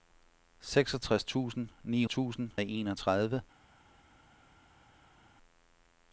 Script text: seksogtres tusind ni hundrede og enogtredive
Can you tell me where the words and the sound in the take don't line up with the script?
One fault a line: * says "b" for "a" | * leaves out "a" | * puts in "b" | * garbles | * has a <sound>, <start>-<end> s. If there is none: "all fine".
* says "tusind" for "hundrede"